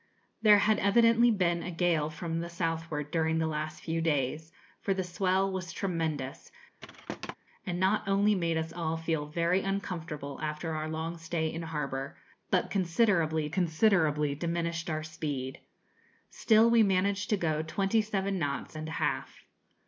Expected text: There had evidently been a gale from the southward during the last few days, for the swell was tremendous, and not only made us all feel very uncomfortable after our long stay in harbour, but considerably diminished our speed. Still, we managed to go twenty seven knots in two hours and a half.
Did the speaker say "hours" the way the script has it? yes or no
no